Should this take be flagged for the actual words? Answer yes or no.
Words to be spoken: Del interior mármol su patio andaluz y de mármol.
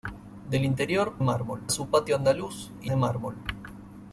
no